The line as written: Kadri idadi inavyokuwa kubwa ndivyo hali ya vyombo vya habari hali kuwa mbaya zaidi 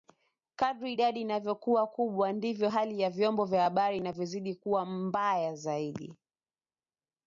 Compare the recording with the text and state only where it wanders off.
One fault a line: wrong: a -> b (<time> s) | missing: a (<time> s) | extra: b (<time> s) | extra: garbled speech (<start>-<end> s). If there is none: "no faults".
wrong: hali -> inavyozidi (4.0 s)